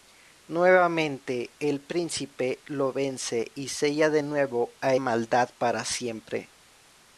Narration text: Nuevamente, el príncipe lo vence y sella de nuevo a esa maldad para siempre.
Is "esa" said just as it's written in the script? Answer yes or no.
no